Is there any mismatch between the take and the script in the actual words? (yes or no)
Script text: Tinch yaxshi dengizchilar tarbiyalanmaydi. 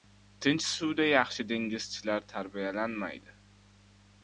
yes